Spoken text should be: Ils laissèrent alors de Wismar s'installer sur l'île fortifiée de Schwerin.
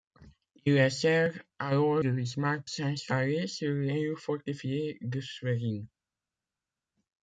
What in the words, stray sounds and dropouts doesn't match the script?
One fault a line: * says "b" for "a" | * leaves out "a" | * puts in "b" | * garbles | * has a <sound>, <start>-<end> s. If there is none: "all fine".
all fine